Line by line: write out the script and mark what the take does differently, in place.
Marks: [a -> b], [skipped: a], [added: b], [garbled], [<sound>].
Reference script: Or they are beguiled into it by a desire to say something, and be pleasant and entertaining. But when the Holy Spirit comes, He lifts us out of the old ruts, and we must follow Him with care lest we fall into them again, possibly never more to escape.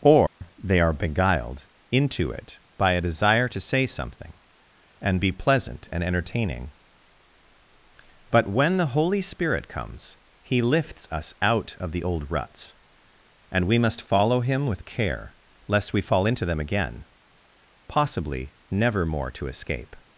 Or [dropout] they are beguiled into it by a desire to say something, and be pleasant and entertaining. But when the Holy Spirit comes, He lifts us out of the old ruts, and we must follow Him with care lest we fall into them again, possibly never more to escape.